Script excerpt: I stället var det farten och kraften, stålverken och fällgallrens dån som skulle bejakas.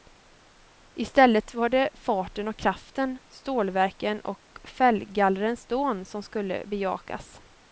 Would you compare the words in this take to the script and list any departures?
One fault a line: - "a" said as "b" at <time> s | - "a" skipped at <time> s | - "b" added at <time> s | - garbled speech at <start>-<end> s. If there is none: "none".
none